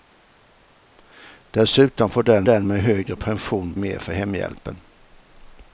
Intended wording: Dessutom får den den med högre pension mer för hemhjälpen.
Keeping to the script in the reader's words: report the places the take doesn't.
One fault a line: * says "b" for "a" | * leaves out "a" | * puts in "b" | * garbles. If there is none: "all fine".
all fine